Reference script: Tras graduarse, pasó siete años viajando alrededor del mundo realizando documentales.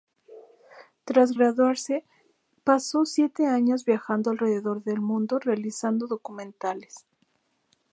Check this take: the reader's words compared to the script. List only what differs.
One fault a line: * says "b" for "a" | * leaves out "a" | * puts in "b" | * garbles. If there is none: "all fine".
all fine